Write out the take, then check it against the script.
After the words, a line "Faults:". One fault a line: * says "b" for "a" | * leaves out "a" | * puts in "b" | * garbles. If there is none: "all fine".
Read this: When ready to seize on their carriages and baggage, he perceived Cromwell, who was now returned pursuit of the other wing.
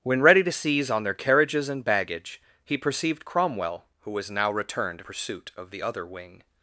When ready to seize on their carriages and baggage, he perceived Cromwell, who was now returned pursuit of the other wing.
Faults:
all fine